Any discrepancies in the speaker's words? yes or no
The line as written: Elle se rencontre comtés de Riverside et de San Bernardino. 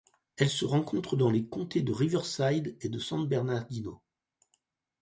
yes